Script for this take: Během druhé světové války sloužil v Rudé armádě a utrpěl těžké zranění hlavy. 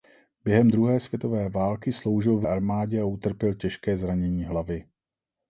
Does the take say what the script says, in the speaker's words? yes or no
no